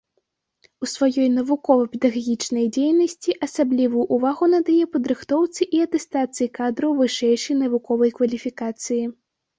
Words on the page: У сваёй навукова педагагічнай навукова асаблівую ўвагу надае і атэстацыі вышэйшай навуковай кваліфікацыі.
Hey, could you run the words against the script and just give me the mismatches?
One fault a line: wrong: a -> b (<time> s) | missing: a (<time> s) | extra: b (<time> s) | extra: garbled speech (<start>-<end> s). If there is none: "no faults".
wrong: навукова -> дзейнасці (2.8 s)
extra: падрыхтоўцы (4.9 s)
extra: кадраў (6.6 s)